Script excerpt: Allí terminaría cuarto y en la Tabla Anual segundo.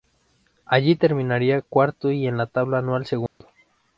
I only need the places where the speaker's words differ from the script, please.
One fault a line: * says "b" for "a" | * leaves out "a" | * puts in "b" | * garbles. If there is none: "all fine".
all fine